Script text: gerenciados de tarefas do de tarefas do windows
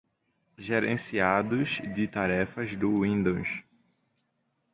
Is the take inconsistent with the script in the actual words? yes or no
yes